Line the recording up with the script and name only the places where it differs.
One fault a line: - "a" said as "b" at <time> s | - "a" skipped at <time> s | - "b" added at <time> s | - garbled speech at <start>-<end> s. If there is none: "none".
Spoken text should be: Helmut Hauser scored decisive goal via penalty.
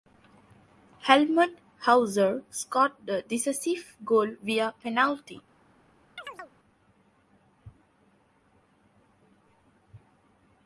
- "the" added at 3.0 s